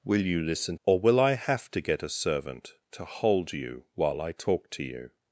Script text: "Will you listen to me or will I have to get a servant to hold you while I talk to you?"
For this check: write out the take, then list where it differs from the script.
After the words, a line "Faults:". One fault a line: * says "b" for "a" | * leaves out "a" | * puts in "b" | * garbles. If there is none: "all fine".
"Will you listen or will I have to get a servant to hold you while I talk to you?"
Faults:
* leaves out "to me"